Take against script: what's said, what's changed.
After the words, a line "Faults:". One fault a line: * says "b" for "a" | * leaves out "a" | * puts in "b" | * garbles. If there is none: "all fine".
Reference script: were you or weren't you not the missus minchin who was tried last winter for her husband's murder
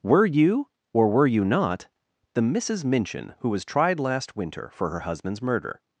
were you or were you not the missus minchin who was tried last winter for her husband's murder
Faults:
* says "were" for "weren't"